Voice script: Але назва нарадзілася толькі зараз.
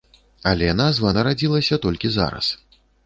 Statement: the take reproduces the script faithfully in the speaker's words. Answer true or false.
true